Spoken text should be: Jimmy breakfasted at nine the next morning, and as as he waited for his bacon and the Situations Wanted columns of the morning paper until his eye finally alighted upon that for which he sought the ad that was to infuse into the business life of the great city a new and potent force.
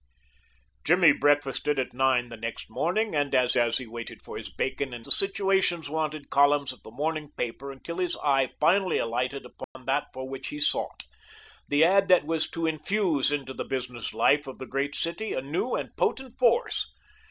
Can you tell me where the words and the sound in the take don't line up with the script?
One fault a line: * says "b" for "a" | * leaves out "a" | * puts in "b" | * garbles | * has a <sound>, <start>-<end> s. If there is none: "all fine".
* has a dropout, 9.6-9.8 s